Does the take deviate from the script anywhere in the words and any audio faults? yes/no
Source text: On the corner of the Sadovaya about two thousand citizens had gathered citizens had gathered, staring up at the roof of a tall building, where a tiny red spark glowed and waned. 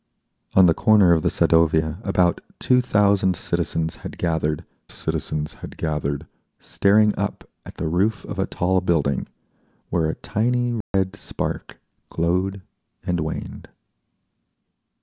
yes